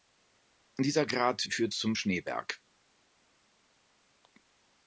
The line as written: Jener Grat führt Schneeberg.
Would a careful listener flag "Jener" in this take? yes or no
yes